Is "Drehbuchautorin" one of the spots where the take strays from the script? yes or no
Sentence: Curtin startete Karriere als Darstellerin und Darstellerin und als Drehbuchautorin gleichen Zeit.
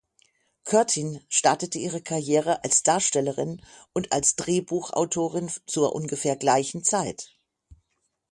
yes